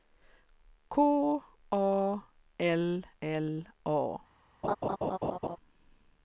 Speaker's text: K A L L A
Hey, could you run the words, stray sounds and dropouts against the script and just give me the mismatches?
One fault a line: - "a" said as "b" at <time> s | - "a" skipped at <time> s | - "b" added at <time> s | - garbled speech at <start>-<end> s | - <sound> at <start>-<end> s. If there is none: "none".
- laugh at 4.6-5.6 s